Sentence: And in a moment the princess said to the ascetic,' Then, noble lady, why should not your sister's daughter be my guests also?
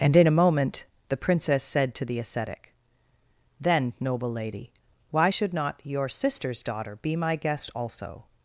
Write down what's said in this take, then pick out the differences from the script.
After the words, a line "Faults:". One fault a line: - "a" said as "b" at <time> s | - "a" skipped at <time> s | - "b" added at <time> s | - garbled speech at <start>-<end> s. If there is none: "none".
And in a moment the princess said to the ascetic,' Then, noble lady, why should not your sister's daughter be my guest also?
Faults:
- "guests" said as "guest" at 7.3 s